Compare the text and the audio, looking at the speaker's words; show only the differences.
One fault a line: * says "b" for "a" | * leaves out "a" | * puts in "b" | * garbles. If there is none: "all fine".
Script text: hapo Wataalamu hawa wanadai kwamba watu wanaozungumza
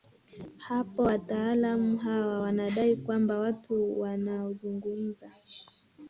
all fine